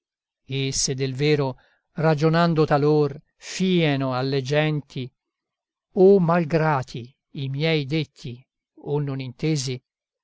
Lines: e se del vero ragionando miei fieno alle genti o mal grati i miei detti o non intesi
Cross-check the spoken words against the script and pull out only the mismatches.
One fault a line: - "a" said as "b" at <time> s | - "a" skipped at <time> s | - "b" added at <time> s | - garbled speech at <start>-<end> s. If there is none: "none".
- "miei" said as "talor" at 2.6 s